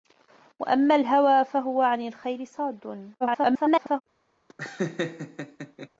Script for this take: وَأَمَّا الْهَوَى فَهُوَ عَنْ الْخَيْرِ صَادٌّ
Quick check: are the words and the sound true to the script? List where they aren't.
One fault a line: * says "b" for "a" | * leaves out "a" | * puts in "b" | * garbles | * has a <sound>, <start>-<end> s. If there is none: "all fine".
* garbles
* has a laugh, 4.5-5.9 s